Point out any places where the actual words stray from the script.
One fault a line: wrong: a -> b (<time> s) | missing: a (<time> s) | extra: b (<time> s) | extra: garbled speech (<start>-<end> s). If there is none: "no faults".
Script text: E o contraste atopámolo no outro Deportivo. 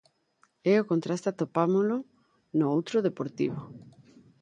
no faults